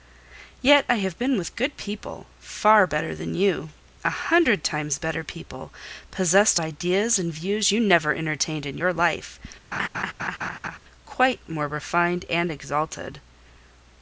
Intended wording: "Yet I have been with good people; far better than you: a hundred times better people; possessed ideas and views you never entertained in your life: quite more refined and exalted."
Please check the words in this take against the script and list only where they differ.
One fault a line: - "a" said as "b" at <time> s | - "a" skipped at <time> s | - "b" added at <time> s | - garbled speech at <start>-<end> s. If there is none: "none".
none